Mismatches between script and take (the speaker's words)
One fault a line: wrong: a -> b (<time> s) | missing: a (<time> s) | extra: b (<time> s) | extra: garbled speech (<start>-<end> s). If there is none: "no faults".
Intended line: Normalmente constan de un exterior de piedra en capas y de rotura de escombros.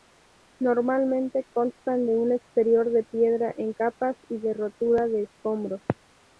no faults